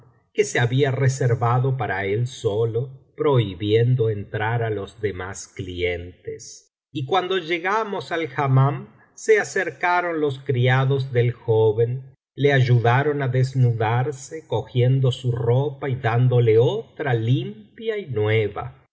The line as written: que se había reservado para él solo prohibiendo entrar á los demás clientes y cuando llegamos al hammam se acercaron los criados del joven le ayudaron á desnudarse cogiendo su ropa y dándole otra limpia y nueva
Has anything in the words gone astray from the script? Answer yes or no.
no